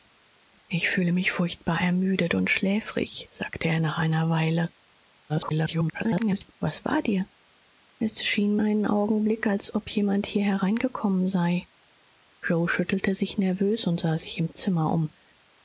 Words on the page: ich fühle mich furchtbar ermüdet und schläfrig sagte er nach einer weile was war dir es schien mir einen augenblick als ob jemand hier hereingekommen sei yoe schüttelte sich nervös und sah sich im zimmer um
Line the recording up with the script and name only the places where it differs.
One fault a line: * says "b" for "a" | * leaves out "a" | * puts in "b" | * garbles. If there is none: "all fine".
* garbles
* leaves out "mir"